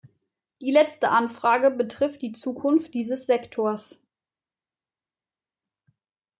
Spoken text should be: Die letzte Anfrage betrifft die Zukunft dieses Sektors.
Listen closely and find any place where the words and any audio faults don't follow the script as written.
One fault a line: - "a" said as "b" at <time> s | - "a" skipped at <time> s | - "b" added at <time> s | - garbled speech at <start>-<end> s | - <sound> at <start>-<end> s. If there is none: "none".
none